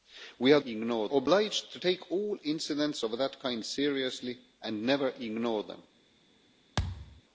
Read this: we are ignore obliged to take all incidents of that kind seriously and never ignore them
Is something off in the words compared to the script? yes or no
no